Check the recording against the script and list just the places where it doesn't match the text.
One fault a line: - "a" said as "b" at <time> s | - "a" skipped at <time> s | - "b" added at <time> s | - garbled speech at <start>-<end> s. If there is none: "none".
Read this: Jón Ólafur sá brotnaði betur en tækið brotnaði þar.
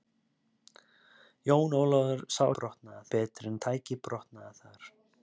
none